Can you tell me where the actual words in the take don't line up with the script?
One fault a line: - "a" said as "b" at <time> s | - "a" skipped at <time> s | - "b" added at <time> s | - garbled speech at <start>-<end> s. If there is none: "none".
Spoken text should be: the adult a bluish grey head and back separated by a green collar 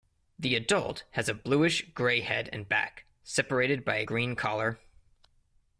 - "has" added at 1.1 s